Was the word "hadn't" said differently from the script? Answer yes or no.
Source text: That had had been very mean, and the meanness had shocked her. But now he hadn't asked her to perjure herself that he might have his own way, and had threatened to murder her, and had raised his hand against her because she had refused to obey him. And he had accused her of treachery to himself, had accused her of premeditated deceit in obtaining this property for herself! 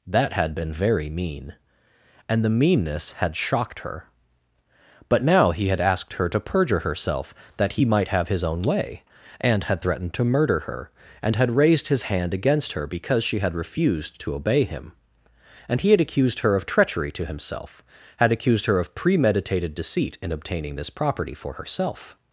yes